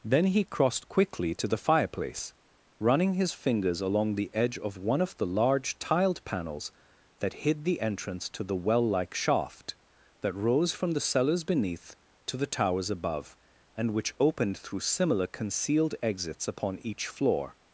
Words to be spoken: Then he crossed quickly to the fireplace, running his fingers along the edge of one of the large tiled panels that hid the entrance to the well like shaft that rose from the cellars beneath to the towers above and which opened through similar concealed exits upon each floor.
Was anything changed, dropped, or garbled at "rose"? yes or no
no